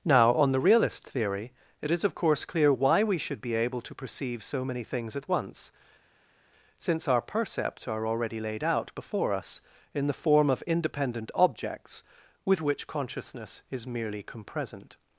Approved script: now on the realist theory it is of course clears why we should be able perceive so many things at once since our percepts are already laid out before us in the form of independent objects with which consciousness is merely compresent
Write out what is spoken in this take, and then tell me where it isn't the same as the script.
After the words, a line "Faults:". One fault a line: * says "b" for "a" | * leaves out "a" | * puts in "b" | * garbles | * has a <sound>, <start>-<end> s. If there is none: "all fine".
now on the realist theory it is of course clear why we should be able to perceive so many things at once since our percepts are already laid out before us in the form of independent objects with which consciousness is merely compresent
Faults:
* says "clear" for "clears"
* puts in "to"